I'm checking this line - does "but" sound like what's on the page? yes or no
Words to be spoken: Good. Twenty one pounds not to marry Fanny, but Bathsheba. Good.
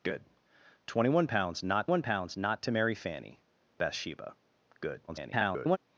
no